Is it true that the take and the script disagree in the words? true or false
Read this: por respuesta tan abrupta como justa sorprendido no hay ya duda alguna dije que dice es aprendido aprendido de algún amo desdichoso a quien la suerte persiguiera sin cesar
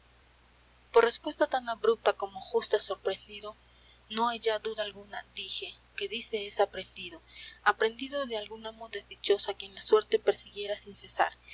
false